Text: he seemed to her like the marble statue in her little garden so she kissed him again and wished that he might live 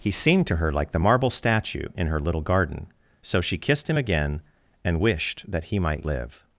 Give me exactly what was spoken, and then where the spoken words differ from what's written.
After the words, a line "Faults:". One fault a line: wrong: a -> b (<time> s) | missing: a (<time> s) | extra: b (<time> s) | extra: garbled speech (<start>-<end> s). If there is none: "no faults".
he seemed to her like the marble statue in her little garden so she kissed him again and wished that he might live
Faults:
no faults